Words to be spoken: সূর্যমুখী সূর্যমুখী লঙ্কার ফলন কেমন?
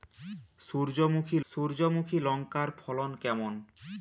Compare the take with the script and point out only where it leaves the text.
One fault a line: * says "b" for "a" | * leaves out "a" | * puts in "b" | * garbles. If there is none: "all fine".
all fine